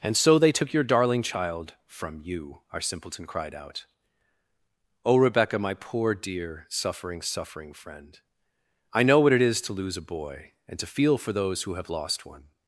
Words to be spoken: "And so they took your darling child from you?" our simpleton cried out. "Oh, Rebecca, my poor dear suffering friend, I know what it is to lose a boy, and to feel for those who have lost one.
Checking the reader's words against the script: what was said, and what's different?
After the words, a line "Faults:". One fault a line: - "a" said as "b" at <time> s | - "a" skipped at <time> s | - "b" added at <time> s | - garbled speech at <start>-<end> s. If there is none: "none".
"And so they took your darling child from you?" our simpleton cried out. "Oh, Rebecca, my poor dear suffering suffering friend, I know what it is to lose a boy, and to feel for those who have lost one.
Faults:
- "suffering" added at 7.2 s